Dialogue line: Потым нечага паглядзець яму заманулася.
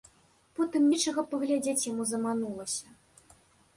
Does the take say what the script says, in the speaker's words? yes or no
yes